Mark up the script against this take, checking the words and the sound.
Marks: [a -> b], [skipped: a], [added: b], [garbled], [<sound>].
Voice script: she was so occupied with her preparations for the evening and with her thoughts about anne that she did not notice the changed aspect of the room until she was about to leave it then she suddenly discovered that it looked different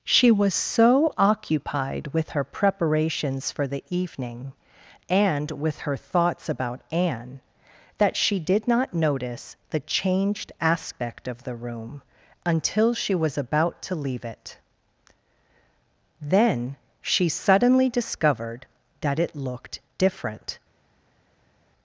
she was so occupied with her preparations for the evening and with her thoughts about anne that she did not notice the changed aspect of the room until she was about to leave it then she suddenly discovered that it looked different